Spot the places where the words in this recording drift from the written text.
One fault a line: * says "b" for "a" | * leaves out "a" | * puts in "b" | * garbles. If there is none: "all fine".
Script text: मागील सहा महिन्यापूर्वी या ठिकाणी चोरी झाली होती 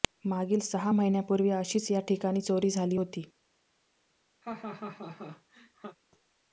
* puts in "अशीच"